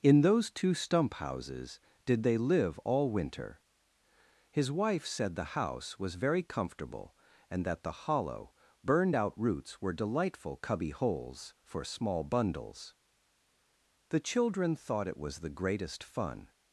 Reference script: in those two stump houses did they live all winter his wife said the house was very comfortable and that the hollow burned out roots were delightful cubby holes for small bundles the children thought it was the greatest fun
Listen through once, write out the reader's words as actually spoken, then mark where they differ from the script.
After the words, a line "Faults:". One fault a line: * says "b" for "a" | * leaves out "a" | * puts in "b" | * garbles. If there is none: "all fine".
in those two stump houses did they live all winter his wife said the house was very comfortable and that the hollow burned out roots were delightful cubby holes for small bundles the children thought it was the greatest fun
Faults:
all fine